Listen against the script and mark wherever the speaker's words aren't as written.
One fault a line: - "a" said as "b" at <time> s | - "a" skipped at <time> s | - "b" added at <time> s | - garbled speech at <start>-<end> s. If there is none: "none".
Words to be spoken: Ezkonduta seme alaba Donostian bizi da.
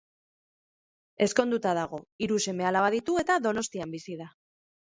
- "dago hiru" added at 1.8 s
- "ditu eta" added at 3.0 s